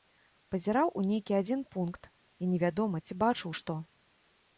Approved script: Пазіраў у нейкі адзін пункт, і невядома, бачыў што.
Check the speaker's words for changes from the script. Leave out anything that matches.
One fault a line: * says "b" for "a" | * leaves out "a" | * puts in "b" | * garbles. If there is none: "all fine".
* puts in "ці"